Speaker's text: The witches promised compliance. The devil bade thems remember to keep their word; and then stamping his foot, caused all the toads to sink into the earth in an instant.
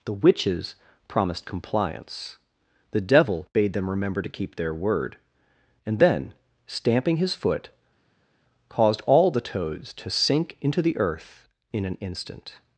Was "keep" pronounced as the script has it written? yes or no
yes